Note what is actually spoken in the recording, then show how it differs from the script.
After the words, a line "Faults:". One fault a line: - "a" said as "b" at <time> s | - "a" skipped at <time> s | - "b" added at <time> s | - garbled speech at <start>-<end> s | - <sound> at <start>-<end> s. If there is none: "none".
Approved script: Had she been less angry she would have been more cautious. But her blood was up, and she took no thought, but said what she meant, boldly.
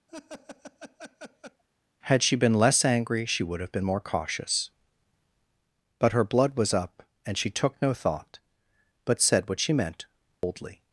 Had she been less angry she would have been more cautious. But her blood was up, and she took no thought, but said what she meant, boldly.
Faults:
- laugh at 0.1-1.6 s
- dropout at 10.3-10.4 s